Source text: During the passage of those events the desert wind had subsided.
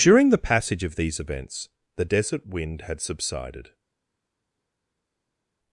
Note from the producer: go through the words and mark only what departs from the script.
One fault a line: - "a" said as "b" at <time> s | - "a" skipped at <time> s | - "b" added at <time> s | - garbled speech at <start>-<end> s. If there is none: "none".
- "those" said as "these" at 0.9 s